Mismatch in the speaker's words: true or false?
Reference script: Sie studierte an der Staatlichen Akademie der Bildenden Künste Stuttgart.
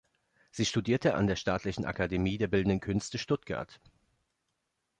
false